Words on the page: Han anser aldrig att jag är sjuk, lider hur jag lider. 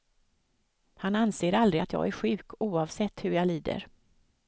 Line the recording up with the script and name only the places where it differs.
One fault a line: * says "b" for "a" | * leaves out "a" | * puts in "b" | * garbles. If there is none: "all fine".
* says "oavsett" for "lider"